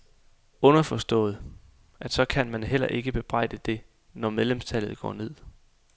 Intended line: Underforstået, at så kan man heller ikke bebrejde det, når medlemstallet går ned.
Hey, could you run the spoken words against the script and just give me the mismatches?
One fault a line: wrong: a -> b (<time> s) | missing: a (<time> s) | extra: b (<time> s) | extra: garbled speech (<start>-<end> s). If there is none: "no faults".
no faults